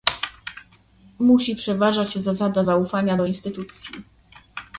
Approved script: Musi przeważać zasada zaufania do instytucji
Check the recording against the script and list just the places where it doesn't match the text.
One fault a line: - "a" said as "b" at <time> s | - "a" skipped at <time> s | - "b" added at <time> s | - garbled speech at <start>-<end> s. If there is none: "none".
none